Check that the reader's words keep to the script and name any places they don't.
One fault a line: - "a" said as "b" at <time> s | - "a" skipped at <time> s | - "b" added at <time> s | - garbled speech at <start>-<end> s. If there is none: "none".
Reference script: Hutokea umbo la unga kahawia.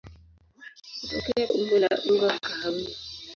none